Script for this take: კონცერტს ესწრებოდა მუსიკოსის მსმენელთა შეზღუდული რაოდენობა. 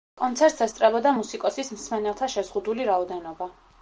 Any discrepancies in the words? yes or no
no